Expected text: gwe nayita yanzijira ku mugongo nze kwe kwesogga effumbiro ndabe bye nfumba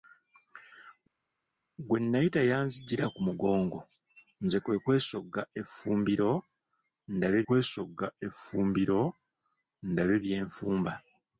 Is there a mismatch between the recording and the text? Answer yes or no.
yes